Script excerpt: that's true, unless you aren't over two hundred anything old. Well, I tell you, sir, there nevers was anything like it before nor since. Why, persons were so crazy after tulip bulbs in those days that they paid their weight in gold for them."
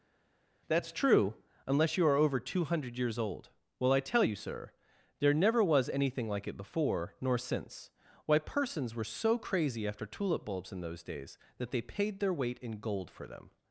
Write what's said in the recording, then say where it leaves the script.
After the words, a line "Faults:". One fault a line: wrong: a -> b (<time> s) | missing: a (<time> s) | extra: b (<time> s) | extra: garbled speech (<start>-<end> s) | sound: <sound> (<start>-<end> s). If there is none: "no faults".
that's true, unless you are over two hundred years old. Well, I tell you, sir, there never was anything like it before nor since. Why, persons were so crazy after tulip bulbs in those days that they paid their weight in gold for them."
Faults:
wrong: aren't -> are (2.1 s)
wrong: anything -> years (3.0 s)
wrong: nevers -> never (5.3 s)